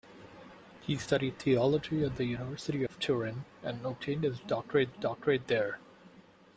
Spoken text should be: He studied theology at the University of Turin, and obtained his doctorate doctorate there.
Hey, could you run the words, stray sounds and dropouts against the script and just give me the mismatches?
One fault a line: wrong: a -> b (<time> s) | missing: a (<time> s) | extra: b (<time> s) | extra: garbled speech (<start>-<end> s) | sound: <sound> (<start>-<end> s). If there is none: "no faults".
sound: dropout (2.9-2.9 s)